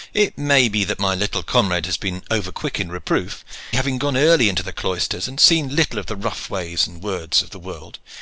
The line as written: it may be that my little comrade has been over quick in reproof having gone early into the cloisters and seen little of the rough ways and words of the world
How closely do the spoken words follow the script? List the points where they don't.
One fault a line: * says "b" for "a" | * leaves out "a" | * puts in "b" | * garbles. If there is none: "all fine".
all fine